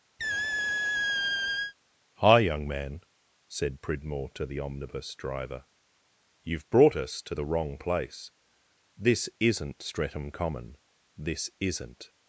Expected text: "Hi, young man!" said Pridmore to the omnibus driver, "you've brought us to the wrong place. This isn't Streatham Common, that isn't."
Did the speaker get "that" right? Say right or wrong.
wrong